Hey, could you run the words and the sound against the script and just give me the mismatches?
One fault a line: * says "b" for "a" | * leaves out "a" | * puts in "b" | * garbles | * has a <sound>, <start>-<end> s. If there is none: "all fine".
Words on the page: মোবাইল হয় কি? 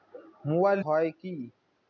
all fine